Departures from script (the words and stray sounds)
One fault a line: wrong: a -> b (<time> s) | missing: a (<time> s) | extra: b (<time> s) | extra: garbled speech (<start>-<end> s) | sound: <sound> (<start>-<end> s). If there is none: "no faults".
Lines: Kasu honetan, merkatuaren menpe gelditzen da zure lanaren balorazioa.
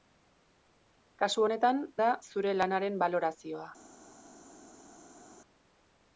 missing: merkatuaren menpe gelditzen (1.8 s)